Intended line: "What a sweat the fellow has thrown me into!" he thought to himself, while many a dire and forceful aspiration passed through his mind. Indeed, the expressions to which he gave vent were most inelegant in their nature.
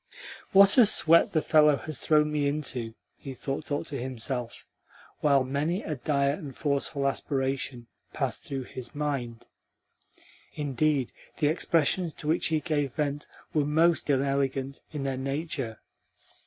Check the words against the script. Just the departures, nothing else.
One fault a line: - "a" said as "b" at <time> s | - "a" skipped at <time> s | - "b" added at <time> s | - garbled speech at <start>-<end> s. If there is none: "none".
- "thought" added at 3.6 s